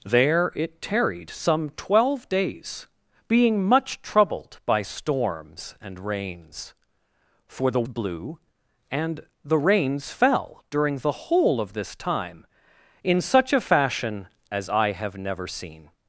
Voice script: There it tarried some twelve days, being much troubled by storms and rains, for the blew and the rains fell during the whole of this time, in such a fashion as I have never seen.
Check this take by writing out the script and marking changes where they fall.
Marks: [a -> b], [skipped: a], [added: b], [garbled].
There it tarried some twelve days, being much troubled by storms and rains, for the blew and the rains fell during the whole of this time, in such a fashion as I have never seen.